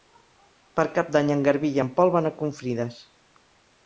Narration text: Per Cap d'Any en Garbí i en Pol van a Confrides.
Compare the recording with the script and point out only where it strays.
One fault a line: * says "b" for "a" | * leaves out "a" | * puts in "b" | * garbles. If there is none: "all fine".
all fine